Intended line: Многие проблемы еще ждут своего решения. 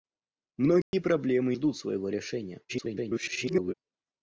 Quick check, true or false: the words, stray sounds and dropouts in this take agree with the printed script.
false